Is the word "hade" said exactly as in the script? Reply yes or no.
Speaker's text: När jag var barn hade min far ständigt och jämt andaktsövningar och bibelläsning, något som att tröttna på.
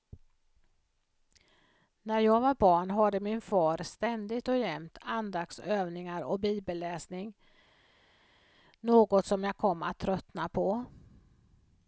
yes